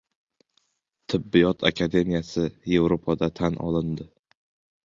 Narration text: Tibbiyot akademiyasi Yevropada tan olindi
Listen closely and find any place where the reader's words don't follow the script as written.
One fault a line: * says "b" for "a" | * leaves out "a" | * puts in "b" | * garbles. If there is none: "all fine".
all fine